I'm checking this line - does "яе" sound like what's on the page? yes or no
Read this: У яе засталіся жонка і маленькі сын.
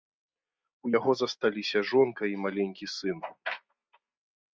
no